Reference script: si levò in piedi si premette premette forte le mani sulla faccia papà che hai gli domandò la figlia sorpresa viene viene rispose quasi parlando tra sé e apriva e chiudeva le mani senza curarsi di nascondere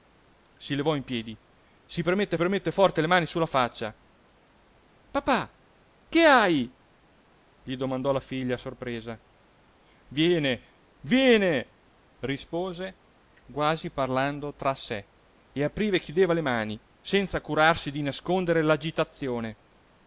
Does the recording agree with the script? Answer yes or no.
yes